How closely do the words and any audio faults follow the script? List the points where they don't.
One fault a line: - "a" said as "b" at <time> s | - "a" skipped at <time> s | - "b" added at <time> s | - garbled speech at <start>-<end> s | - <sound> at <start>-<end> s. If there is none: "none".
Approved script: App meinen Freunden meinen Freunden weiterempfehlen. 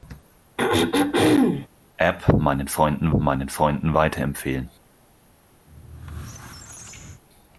- throat clearing at 0.6-1.7 s
- squeak at 5.7-7.2 s